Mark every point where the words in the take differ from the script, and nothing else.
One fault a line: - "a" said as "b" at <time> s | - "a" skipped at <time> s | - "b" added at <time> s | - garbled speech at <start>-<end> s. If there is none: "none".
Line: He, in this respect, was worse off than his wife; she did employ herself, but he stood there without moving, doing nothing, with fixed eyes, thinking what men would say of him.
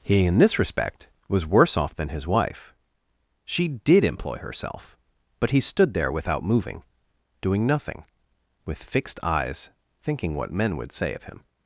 none